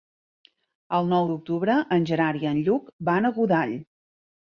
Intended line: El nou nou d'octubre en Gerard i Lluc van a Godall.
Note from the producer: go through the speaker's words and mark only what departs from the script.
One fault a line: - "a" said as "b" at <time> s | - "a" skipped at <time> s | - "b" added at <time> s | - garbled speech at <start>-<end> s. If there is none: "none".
- "nou" skipped at 1.3 s
- "en" added at 2.5 s